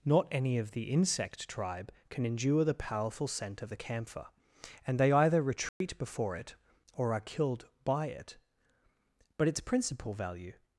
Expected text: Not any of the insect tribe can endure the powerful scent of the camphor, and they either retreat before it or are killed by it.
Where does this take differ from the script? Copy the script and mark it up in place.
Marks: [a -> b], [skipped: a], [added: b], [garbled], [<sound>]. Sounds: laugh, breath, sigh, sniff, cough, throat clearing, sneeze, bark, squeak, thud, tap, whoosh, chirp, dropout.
Not any of the insect tribe can endure the powerful scent of the camphor, and they either retreat [dropout] before it or are killed by it. [added: But its principal value]